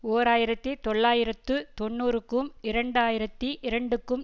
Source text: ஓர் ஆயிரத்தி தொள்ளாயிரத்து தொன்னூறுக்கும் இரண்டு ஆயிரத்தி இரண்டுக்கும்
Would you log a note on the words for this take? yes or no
no